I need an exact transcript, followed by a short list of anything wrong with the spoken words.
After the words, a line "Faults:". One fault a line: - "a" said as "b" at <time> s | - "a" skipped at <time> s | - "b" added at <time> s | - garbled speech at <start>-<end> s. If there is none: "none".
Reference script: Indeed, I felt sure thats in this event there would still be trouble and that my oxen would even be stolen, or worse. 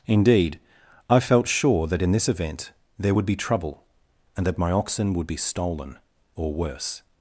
Indeed, I felt sure that in this event there would be trouble and that my oxen would be stolen, or worse.
Faults:
- "thats" said as "that" at 1.9 s
- "still" skipped at 3.3 s
- "even" skipped at 5.3 s